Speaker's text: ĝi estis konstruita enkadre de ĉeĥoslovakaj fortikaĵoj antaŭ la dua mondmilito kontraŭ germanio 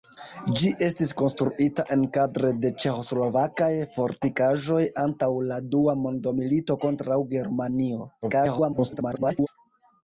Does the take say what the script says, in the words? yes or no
no